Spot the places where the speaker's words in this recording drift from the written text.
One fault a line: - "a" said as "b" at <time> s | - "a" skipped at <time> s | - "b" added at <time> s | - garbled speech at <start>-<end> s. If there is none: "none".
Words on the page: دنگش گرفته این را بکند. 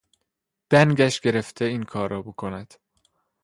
- "کار" added at 1.8 s